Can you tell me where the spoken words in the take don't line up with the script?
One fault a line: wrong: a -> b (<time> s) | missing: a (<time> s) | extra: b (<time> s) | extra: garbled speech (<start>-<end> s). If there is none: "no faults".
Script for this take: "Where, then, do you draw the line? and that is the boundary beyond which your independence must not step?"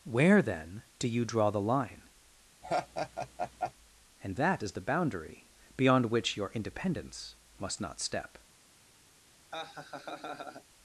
no faults